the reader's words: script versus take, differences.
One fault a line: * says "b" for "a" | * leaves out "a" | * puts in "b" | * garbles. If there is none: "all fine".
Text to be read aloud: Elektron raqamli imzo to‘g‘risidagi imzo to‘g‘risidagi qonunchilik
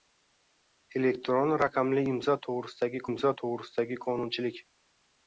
all fine